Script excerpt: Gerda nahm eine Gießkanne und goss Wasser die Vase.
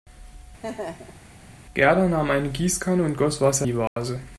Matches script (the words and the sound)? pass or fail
fail